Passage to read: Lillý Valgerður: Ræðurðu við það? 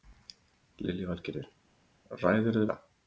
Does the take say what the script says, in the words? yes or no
no